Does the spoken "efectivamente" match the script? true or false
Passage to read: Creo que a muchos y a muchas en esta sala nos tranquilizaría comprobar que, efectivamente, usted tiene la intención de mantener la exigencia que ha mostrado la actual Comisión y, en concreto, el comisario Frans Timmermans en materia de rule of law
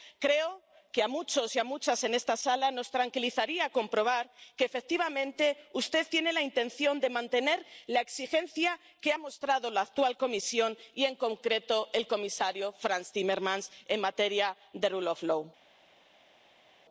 true